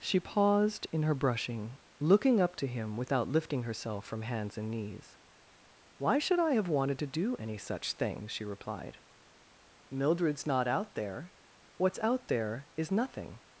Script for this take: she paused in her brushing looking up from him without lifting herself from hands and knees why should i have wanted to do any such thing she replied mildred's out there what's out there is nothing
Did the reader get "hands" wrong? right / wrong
right